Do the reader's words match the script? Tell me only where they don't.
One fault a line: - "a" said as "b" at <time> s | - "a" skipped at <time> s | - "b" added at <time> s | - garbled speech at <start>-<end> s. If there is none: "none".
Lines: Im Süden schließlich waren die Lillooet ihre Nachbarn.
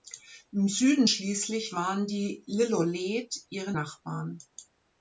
none